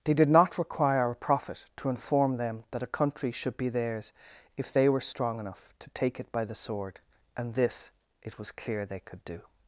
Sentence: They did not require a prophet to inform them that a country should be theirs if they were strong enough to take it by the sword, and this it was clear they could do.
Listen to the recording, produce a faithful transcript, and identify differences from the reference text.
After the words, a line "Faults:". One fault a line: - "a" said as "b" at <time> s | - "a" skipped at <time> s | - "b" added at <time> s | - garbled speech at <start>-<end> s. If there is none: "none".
They did not require a prophet to inform them that a country should be theirs if they were strong enough to take it by the sword, and this it was clear they could do.
Faults:
none